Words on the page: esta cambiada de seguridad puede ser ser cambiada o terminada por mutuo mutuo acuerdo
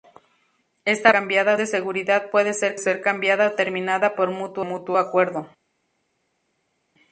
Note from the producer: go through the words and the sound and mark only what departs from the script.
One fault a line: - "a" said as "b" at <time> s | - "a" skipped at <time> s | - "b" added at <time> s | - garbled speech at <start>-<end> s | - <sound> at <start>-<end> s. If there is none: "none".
none